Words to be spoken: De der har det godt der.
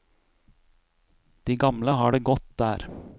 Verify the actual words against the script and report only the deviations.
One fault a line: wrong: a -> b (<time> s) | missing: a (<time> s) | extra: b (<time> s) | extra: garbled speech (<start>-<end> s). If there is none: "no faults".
wrong: der -> gamle (1.6 s)